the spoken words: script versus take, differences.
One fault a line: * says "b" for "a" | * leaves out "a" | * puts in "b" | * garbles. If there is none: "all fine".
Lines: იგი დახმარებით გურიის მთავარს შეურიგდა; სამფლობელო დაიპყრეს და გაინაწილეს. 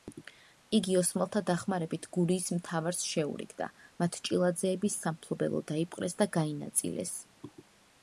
* puts in "ოსმალთა"
* puts in "მათ ჭილაძეების"